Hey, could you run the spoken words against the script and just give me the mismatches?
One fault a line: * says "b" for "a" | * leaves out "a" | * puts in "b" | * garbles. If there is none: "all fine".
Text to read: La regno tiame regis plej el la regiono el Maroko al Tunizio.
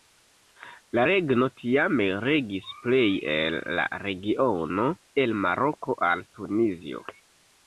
all fine